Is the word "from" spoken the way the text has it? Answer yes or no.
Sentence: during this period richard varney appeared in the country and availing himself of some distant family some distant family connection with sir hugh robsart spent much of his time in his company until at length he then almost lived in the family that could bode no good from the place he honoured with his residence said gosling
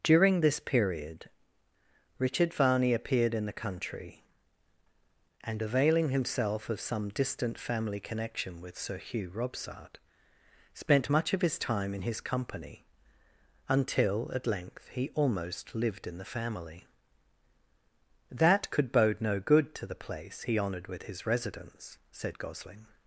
no